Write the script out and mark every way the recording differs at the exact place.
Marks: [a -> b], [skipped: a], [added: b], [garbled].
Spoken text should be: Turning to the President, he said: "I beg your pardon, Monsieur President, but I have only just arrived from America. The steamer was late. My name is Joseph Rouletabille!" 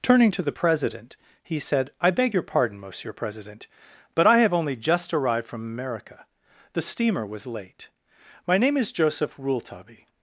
Turning to the President, he said: "I beg your pardon, Monsieur President, but I have only just arrived from America. The steamer was late. My name is Joseph Rouletabille!"